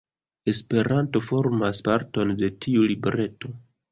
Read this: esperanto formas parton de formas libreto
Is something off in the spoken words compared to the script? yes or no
yes